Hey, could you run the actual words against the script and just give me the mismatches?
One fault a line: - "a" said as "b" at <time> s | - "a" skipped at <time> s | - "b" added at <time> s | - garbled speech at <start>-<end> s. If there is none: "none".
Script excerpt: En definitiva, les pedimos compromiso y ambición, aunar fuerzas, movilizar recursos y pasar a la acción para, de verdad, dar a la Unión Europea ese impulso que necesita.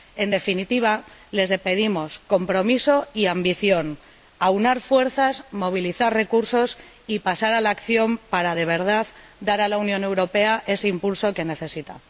none